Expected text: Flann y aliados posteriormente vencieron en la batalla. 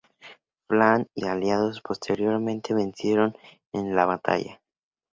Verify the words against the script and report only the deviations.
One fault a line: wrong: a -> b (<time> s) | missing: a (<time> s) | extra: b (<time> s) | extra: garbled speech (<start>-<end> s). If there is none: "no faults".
no faults